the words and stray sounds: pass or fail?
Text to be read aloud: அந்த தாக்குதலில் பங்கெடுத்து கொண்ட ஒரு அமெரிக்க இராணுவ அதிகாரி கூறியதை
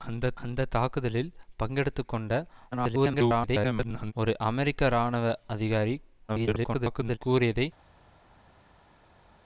fail